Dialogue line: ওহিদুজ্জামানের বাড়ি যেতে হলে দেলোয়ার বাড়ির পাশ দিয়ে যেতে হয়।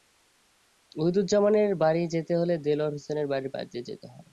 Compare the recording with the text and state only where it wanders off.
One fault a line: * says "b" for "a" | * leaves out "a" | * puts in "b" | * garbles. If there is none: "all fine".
* puts in "হোসেনের"